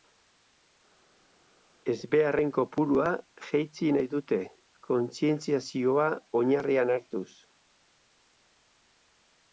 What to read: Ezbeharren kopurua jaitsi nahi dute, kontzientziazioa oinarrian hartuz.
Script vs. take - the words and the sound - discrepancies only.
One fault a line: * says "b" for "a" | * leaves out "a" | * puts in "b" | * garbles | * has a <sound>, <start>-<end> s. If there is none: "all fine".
all fine